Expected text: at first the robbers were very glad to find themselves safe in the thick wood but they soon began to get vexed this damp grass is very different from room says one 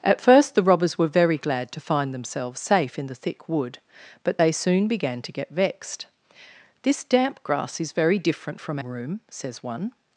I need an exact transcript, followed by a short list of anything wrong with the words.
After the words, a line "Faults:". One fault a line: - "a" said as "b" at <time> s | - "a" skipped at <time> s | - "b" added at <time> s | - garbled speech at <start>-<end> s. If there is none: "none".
at first the robbers were very glad to find themselves safe in the thick wood but they soon began to get vexed this damp grass is very different from room says one
Faults:
none